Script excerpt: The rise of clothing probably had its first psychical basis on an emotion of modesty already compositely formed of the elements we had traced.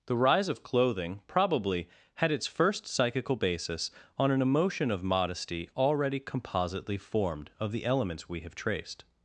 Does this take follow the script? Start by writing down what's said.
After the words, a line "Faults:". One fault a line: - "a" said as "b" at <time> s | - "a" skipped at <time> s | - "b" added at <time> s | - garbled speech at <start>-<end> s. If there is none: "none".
The rise of clothing probably had its first psychical basis on an emotion of modesty already compositely formed of the elements we have traced.
Faults:
- "had" said as "have" at 8.4 s